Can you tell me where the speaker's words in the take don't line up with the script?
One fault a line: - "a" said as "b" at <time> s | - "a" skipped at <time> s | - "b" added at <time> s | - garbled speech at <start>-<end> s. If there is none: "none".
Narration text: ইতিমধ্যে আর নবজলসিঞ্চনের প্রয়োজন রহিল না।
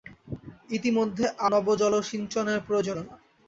- "আর" skipped at 1.2 s
- "রহিল" skipped at 3.0 s